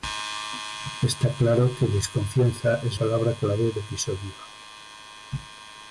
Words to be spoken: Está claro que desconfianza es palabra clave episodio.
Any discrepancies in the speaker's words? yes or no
no